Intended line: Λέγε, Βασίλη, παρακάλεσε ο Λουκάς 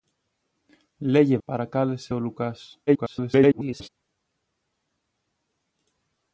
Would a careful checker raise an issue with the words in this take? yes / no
yes